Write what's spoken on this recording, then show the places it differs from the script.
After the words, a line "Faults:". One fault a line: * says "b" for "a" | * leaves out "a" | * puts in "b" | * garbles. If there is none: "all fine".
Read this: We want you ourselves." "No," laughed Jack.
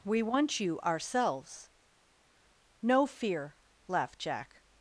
We want you ourselves." "No fear," laughed Jack.
Faults:
* puts in "fear"